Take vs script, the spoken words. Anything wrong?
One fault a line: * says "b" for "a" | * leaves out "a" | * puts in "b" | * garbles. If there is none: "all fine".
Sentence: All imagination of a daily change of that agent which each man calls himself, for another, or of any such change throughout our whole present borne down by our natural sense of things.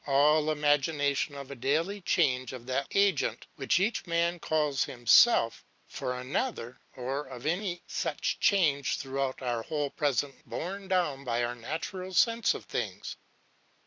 all fine